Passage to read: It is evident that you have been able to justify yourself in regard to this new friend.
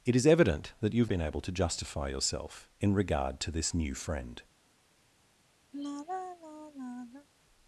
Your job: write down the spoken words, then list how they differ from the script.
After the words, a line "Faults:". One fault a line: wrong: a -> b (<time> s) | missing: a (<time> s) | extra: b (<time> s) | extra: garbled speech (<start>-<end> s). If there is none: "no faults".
It is evident that you have been able to justify yourself in regard to this new friend.
Faults:
no faults